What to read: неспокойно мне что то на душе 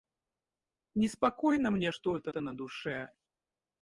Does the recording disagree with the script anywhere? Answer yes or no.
yes